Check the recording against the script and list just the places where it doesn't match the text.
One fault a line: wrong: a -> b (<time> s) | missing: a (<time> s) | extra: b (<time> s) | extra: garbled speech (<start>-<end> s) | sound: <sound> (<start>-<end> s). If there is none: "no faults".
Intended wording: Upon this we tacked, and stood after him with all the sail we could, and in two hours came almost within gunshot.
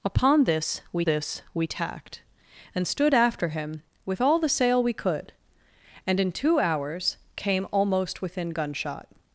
extra: this we (1.0 s)